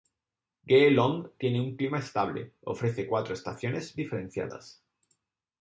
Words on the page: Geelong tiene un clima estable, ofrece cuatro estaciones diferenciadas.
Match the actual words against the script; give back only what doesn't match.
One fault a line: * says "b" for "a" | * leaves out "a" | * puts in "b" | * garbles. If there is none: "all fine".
all fine